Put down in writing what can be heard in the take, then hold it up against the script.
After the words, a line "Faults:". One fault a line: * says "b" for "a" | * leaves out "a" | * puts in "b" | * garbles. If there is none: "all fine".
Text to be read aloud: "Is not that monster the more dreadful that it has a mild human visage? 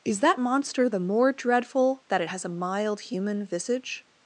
"Is that monster the more dreadful that it has a mild human visage?
Faults:
* leaves out "not"